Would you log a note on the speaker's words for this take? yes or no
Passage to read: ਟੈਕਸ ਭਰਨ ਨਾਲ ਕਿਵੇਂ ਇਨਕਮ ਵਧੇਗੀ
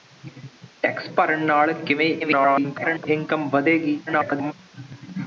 yes